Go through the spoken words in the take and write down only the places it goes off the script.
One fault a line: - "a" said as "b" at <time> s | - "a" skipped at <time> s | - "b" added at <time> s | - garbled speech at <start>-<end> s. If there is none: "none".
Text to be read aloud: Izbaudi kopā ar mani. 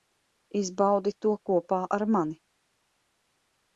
- "to" added at 1.2 s